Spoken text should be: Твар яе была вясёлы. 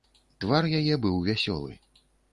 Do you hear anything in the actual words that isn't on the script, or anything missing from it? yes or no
yes